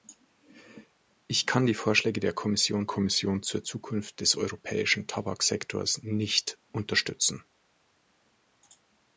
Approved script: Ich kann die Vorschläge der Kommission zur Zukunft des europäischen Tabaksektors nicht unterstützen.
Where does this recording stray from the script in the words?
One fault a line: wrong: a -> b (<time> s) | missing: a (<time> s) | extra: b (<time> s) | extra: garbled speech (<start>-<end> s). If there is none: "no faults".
extra: Kommission (2.8 s)